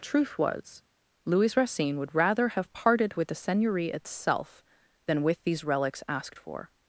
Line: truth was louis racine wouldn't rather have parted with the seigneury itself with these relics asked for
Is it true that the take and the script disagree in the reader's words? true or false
true